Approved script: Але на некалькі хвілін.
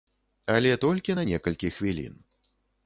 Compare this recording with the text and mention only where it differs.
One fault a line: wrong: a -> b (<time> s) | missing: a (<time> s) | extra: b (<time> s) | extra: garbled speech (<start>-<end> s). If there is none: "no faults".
extra: толькі (0.9 s)